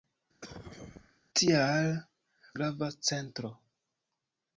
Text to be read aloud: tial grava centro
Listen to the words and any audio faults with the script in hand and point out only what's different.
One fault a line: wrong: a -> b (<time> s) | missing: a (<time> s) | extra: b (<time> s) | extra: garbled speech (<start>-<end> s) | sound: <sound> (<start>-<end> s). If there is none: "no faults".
sound: cough (0.4-1.2 s)